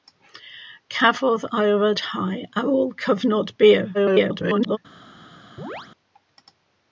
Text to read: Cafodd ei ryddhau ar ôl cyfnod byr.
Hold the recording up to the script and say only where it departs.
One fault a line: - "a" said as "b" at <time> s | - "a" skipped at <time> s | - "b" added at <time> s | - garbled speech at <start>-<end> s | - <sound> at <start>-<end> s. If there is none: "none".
- garbled speech at 3.9-4.8 s
- chirp at 5.6-5.9 s